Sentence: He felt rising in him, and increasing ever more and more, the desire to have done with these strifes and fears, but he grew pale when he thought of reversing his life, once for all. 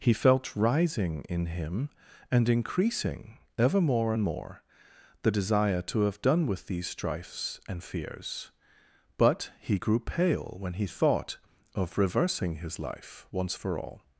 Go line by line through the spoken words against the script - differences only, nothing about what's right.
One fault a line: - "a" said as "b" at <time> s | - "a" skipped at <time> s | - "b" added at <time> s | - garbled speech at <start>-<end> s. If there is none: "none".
none